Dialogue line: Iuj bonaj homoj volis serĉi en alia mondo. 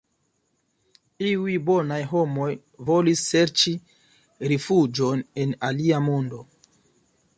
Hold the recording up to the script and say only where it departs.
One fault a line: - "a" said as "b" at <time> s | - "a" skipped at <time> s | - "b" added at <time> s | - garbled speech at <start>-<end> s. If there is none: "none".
- "rifuĝon" added at 4.5 s